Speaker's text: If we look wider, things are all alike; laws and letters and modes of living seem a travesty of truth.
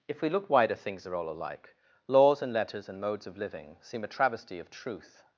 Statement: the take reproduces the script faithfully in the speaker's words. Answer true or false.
true